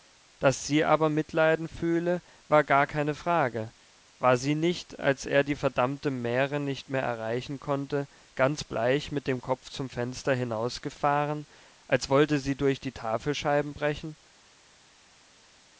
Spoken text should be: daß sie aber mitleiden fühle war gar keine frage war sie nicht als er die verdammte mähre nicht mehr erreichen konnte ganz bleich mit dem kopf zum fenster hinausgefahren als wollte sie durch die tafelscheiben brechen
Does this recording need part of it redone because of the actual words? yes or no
no